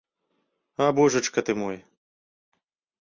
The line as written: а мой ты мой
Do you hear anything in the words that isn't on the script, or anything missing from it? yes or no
yes